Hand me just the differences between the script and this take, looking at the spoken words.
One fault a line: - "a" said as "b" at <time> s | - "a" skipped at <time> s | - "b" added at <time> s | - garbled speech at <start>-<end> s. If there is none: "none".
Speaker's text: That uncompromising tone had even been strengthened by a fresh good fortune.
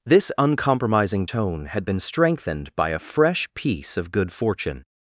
- "That" said as "This" at 0.0 s
- "even" skipped at 1.8 s
- "piece of" added at 3.5 s